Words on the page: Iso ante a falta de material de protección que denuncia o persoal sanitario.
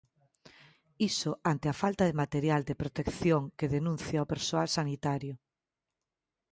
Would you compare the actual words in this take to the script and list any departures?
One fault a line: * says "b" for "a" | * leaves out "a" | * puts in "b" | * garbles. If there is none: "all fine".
all fine